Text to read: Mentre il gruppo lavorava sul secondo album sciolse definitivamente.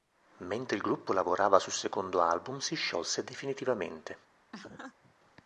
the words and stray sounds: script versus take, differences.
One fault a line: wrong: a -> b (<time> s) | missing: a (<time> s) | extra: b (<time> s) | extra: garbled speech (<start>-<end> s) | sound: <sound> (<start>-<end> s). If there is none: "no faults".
extra: si (2.6 s)
sound: laugh (4.5-5.1 s)